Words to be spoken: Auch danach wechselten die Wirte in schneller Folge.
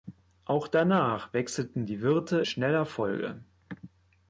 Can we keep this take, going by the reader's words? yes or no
no